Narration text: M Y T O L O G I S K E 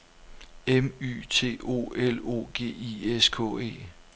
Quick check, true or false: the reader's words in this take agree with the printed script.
true